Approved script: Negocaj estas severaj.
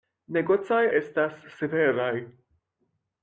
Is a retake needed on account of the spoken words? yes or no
no